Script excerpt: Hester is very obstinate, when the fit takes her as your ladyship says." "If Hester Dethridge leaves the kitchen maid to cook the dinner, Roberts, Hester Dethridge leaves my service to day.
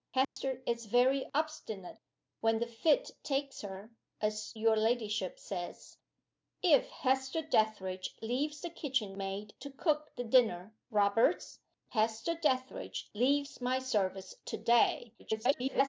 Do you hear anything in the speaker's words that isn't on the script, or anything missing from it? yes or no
yes